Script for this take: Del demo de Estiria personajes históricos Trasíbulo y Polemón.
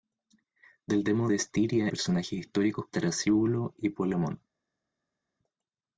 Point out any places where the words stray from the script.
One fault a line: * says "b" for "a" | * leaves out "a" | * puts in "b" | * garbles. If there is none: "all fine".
all fine